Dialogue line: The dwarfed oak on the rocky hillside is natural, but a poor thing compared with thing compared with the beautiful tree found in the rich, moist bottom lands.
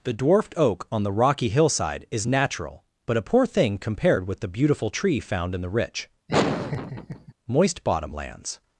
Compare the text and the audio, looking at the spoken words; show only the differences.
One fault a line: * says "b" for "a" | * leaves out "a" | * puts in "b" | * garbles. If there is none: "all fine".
* leaves out "thing compared with"